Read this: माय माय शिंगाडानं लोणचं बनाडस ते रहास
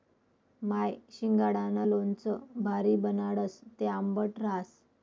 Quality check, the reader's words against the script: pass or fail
fail